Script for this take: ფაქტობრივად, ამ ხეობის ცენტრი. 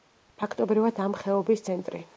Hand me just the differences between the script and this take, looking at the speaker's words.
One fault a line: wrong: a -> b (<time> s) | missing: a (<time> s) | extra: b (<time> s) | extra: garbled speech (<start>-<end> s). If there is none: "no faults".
no faults